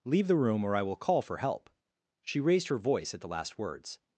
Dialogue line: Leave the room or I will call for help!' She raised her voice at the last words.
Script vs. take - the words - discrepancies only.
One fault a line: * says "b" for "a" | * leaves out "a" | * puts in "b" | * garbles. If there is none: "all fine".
all fine